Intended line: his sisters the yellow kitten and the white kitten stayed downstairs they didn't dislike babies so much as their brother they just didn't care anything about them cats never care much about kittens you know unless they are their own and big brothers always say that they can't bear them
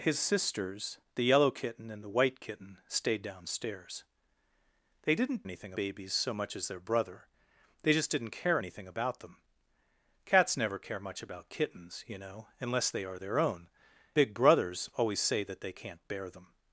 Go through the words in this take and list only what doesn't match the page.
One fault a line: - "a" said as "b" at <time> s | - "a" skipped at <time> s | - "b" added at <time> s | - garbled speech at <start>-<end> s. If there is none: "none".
- "dislike" said as "anything" at 5.4 s
- "and" skipped at 13.7 s